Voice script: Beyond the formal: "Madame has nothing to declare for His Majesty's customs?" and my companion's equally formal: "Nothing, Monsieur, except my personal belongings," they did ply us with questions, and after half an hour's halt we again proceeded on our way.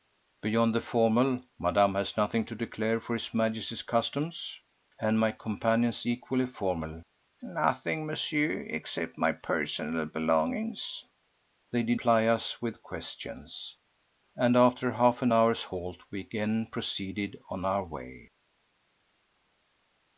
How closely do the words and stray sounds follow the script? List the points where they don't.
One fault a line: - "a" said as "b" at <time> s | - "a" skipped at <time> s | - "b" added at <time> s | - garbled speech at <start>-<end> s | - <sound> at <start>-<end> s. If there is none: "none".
none